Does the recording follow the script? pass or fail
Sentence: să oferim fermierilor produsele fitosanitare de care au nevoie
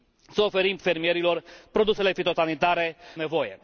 fail